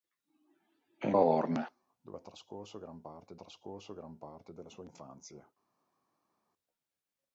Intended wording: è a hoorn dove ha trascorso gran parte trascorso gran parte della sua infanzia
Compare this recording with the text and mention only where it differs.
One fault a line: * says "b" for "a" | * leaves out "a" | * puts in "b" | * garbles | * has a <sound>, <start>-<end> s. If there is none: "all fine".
all fine